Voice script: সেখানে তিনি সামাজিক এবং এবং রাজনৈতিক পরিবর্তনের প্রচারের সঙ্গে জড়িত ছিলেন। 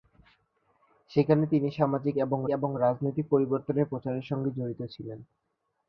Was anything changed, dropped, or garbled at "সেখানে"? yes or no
no